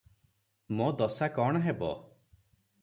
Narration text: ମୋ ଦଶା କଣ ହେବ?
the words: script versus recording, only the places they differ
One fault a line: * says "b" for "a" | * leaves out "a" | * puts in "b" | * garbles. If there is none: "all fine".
all fine